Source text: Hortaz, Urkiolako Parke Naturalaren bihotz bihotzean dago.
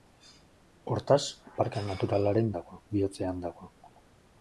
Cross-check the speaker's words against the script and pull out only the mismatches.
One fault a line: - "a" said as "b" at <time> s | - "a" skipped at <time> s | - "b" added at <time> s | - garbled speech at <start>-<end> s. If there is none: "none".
- "Urkiolako" skipped at 1.2 s
- "bihotz" said as "dago" at 2.6 s